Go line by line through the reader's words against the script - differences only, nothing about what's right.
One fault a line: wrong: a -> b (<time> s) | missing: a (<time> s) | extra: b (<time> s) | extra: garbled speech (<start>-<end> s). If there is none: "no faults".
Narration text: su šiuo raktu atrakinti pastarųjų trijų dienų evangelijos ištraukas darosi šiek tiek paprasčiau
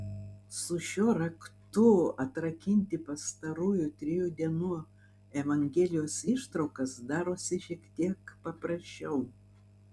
no faults